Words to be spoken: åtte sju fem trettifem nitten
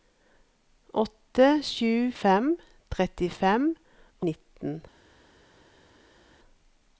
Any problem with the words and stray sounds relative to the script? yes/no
no